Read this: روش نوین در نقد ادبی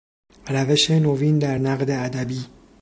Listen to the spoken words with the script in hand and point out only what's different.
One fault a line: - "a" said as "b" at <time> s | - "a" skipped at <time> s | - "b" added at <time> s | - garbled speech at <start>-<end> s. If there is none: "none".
none